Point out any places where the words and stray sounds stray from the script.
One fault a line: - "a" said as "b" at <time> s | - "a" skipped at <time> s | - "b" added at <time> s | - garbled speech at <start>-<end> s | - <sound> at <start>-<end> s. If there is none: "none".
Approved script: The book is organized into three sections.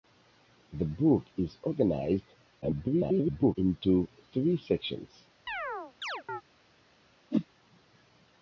- garbled speech at 2.6-3.6 s
- chirp at 5.5-6.4 s
- whoosh at 7.3-7.5 s